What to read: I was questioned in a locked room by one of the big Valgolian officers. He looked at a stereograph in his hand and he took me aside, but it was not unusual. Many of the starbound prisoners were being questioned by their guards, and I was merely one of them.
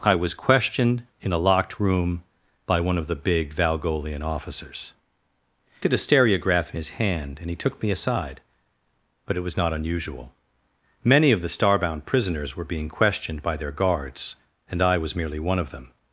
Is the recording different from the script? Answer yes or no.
yes